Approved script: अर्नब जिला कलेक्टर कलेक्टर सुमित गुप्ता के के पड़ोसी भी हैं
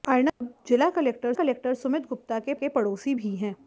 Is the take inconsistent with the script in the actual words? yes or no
no